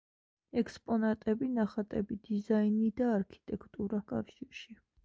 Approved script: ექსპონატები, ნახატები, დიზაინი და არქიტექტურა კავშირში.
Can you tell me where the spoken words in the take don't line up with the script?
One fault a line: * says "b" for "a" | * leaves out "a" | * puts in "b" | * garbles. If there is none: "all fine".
all fine